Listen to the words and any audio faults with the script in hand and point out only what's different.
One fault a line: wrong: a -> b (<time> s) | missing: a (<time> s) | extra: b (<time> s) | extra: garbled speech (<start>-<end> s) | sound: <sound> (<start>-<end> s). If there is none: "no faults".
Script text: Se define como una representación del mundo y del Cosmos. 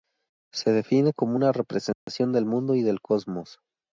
sound: dropout (1.9-2.1 s)